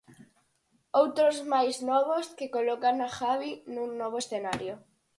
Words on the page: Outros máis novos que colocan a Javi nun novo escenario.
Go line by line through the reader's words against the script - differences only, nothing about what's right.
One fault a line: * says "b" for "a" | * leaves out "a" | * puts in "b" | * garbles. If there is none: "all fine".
all fine